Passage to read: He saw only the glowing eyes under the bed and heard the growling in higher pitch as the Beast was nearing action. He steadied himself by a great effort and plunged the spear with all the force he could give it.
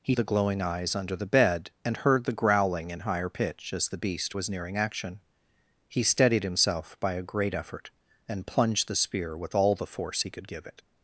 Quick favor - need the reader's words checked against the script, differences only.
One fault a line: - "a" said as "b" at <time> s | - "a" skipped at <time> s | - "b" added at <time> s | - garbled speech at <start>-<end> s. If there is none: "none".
- "saw only" skipped at 0.1 s